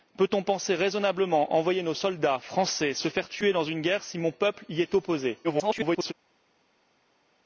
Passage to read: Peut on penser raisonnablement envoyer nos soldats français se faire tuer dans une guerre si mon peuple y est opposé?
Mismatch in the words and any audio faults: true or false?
true